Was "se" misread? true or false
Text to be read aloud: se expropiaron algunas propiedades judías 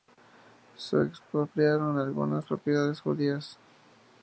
false